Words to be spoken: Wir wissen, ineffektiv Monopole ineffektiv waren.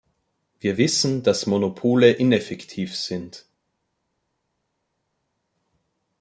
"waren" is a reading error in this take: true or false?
true